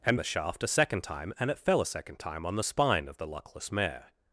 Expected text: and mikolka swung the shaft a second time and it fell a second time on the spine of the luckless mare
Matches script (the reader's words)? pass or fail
fail